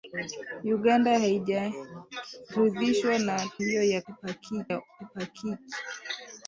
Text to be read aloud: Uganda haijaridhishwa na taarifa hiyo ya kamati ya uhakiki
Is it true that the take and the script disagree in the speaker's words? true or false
true